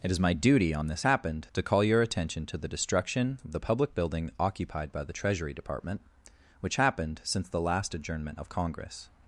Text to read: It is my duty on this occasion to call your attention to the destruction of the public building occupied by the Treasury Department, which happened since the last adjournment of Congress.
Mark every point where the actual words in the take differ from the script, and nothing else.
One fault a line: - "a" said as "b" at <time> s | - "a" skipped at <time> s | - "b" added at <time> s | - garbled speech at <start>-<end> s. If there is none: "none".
- "occasion" said as "happened" at 1.0 s